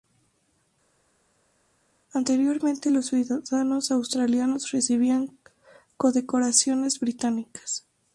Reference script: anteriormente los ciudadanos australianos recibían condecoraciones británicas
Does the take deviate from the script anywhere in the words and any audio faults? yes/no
no